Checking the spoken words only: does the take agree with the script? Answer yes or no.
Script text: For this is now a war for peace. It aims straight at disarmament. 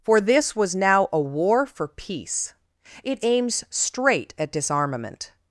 no